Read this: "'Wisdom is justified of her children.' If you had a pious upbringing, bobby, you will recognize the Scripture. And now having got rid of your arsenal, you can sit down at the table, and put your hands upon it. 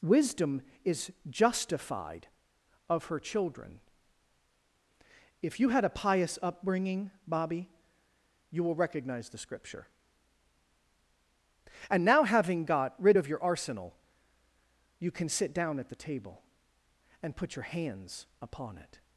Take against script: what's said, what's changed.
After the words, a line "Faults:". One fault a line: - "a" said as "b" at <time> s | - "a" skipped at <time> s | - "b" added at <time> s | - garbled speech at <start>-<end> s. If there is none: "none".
"'Wisdom is justified of her children.' If you had a pious upbringing, bobby, you will recognize the Scripture. And now having got rid of your arsenal, you can sit down at the table, and put your hands upon it.
Faults:
none